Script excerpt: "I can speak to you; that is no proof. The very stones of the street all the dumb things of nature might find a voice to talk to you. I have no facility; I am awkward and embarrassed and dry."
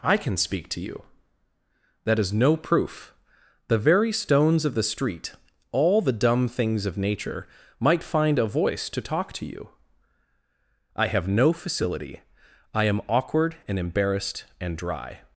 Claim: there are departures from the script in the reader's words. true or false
false